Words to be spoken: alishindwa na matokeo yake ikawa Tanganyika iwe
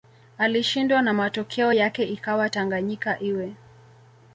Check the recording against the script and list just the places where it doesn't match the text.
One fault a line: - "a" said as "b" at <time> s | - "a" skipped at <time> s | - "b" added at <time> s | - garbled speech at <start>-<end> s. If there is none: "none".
none